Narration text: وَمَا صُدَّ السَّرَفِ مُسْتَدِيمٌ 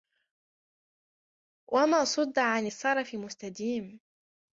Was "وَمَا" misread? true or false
false